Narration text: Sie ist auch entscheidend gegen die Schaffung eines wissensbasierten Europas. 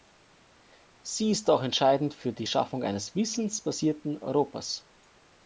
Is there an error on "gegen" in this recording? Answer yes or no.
yes